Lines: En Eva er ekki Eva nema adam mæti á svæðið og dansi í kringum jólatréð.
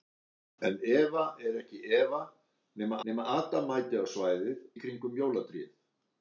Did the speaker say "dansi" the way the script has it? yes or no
no